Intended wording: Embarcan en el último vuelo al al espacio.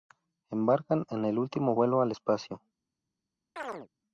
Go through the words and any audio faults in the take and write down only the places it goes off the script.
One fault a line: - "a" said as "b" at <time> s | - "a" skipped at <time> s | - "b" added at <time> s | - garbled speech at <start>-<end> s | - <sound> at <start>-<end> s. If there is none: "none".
- "al" skipped at 2.1 s
- chirp at 3.6-3.9 s